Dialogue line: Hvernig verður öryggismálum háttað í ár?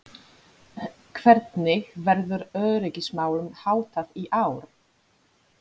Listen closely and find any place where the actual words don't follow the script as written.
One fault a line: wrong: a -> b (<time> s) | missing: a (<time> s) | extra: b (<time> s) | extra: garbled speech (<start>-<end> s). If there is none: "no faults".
no faults